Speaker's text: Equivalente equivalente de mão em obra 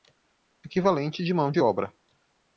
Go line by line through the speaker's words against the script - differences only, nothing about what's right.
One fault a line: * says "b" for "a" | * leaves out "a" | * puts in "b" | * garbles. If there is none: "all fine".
* leaves out "equivalente"
* says "de" for "em"